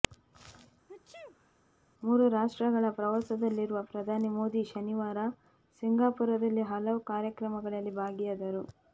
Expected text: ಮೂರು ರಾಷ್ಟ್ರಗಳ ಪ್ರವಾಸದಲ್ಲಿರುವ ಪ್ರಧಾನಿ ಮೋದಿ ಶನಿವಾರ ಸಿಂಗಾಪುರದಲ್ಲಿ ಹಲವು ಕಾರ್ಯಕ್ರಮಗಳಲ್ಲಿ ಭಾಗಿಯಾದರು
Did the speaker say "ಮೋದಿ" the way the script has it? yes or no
yes